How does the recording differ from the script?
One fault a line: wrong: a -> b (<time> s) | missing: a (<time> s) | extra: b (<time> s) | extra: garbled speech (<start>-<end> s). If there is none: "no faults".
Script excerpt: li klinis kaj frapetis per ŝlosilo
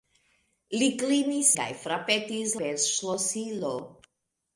no faults